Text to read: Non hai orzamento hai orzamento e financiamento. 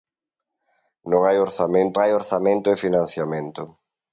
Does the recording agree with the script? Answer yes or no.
yes